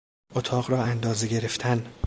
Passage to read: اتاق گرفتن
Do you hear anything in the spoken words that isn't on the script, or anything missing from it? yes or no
yes